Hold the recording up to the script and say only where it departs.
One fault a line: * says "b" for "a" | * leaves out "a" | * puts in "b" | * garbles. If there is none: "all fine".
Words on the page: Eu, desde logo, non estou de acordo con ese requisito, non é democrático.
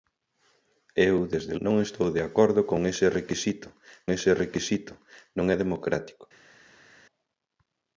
* leaves out "logo"
* puts in "ese requisito"